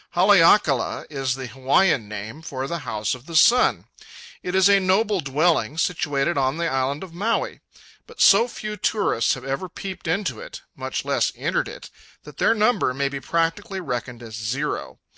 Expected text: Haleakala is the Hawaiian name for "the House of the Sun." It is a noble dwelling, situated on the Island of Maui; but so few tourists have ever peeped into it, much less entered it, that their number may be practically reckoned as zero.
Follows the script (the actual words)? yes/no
yes